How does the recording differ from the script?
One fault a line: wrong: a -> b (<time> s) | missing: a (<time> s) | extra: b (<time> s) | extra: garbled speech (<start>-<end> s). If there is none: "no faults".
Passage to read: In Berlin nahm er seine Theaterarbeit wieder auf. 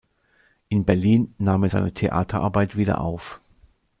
no faults